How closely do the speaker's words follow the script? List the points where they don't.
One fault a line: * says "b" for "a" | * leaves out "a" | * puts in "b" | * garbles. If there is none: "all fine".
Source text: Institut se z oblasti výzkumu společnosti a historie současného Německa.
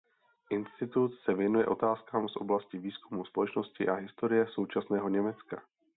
* puts in "věnuje otázkám"